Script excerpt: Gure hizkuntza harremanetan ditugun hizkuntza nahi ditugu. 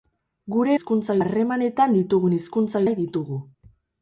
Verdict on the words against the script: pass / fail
pass